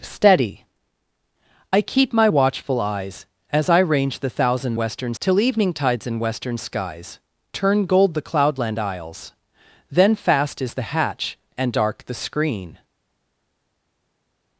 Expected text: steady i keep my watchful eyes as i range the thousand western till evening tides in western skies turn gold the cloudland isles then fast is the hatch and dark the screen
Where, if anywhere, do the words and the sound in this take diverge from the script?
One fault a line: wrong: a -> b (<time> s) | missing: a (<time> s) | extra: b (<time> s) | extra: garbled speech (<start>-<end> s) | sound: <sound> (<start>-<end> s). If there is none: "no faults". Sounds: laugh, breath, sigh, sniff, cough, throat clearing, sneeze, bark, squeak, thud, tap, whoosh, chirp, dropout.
no faults